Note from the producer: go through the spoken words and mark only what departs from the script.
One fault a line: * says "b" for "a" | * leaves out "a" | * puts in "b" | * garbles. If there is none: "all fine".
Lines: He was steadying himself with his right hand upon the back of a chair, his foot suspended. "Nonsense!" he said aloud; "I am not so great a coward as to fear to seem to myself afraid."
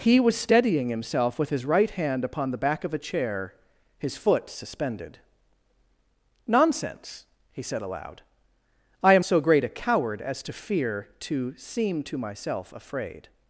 * leaves out "not"